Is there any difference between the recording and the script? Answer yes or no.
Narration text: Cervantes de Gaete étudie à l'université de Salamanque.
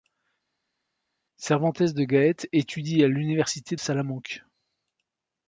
yes